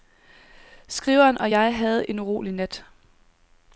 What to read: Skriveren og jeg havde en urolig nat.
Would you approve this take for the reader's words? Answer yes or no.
yes